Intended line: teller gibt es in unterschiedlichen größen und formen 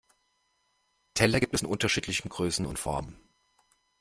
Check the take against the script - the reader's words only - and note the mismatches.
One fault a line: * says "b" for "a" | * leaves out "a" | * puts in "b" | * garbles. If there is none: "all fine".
all fine